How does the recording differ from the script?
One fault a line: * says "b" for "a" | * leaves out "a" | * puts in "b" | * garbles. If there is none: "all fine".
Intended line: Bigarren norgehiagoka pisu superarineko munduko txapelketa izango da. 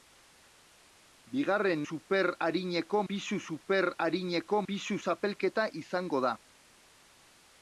* says "superarineko" for "norgehiagoka"
* says "pisu" for "munduko"